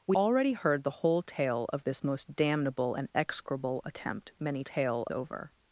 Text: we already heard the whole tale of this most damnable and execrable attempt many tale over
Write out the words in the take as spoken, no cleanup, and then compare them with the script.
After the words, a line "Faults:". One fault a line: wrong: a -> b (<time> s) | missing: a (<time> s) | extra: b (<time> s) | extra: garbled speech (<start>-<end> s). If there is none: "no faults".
we already heard the whole tale of this most damnable and execrable attempt many tale over
Faults:
no faults